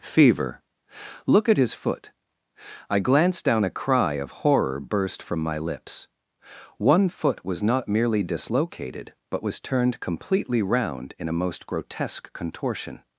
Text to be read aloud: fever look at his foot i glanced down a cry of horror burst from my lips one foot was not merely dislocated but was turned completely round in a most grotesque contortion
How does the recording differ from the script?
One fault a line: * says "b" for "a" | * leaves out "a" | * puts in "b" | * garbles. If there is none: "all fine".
all fine